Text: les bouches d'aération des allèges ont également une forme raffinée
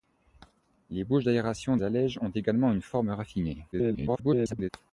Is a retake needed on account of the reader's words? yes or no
yes